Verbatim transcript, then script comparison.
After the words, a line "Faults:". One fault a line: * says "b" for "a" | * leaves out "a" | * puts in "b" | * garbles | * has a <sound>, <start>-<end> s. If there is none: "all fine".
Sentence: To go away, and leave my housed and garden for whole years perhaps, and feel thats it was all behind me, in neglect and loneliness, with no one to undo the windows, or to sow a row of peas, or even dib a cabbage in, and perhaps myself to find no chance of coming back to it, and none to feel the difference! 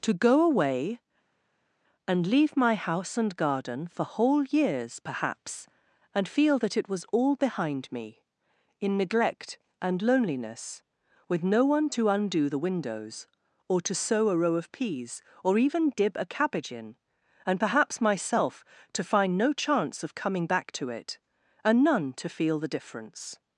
To go away, and leave my house and garden for whole years perhaps, and feel that it was all behind me, in neglect and loneliness, with no one to undo the windows, or to sow a row of peas, or even dib a cabbage in, and perhaps myself to find no chance of coming back to it, and none to feel the difference!
Faults:
* says "house" for "housed"
* says "that" for "thats"